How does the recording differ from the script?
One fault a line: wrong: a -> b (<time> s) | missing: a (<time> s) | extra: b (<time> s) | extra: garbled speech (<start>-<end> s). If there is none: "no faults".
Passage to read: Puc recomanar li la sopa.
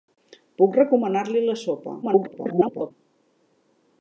extra: garbled speech (2.0-2.9 s)